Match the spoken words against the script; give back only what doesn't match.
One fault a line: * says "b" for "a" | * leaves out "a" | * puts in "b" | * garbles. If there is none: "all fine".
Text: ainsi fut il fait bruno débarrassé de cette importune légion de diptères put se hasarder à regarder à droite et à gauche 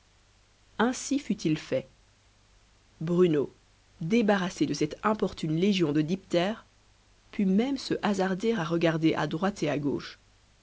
* puts in "même"